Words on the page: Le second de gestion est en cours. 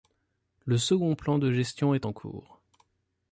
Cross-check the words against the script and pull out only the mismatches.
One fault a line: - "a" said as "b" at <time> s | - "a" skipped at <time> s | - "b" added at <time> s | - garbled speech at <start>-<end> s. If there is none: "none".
- "plan" added at 1.1 s